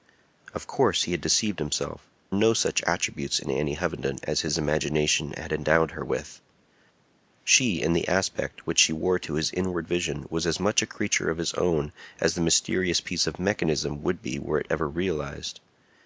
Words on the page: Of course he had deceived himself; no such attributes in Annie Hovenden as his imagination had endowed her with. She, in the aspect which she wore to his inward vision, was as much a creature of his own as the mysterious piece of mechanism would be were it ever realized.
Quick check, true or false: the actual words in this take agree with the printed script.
true